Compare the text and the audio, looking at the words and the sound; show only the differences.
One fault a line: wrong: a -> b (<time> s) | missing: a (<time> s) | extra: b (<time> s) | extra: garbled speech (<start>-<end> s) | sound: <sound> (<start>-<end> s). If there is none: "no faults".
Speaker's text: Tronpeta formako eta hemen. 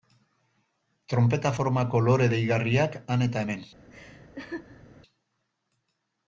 extra: lore deigarriak han (2.1 s)
sound: laugh (3.9-4.8 s)